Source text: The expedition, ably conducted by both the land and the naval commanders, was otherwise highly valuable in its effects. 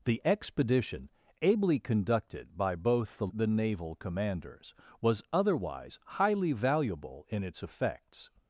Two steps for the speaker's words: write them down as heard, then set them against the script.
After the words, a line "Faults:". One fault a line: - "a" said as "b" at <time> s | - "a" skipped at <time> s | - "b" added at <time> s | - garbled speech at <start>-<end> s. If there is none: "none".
The expedition, ably conducted by both the the naval commanders, was otherwise highly valuable in its effects.
Faults:
- "land and" skipped at 3.3 s